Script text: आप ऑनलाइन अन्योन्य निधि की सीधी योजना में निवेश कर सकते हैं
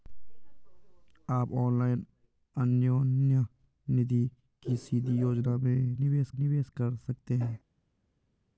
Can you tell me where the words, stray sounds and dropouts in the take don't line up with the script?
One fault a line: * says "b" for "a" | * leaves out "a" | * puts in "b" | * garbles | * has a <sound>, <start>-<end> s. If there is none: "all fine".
* puts in "निवेश"